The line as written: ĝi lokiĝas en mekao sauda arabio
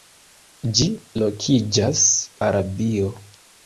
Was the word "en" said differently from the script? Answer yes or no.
yes